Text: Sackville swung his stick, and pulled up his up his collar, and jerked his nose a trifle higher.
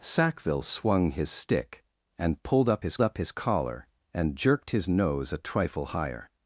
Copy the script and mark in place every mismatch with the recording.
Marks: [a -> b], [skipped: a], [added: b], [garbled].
Sackville swung his stick, and pulled up his up his collar, and jerked his nose a trifle higher.